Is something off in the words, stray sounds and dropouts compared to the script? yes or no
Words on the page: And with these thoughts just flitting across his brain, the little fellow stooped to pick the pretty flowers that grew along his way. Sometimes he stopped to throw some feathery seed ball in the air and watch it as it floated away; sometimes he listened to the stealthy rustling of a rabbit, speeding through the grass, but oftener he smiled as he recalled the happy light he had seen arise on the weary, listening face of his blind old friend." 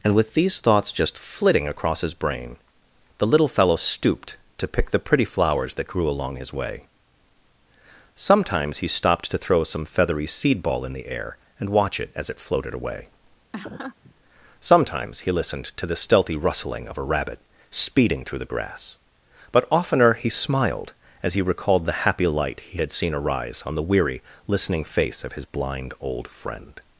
yes